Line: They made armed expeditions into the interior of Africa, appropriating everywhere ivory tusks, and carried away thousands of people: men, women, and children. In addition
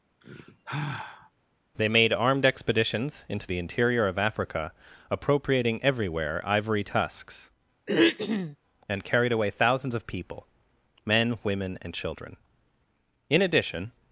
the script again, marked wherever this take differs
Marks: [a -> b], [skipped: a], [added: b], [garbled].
They made armed expeditions into the interior of Africa, appropriating everywhere ivory tusks, and carried away thousands of people: men, women, and children. In addition